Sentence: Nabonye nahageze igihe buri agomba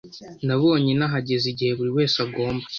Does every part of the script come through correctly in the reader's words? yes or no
no